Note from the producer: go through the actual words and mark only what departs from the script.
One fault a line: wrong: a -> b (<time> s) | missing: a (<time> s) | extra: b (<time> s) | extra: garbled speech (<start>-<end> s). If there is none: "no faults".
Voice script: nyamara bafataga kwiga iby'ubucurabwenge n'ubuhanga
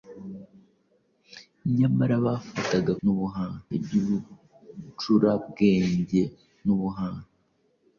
wrong: kwiga -> n'ubuhanga (3.0 s)